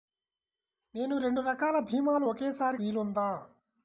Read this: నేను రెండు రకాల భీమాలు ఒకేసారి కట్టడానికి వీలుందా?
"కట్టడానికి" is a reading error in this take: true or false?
true